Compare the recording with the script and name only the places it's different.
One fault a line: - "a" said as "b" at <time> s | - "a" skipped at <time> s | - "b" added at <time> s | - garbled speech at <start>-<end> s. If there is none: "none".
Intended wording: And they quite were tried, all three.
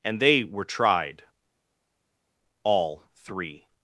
- "quite" skipped at 0.4 s